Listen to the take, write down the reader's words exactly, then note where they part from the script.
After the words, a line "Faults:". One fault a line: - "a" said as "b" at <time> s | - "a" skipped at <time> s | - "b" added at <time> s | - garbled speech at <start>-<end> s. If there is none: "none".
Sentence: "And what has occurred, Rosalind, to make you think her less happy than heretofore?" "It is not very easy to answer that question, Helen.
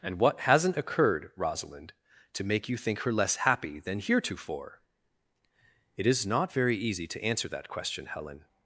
"And what hasn't occurred, Rosalind, to make you think her less happy than heretofore?" "It is not very easy to answer that question, Helen.
Faults:
- "has" said as "hasn't" at 0.4 s